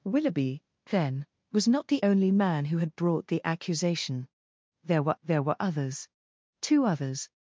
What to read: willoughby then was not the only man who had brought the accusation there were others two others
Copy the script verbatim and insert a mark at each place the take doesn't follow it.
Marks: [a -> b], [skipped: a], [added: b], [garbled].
willoughby then was not the only man who had brought the accusation there were [added: there were] others two others